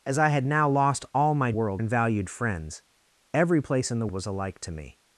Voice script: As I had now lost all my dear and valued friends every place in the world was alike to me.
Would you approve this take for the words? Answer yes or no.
no